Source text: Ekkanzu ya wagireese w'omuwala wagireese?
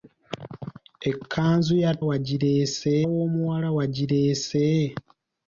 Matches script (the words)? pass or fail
pass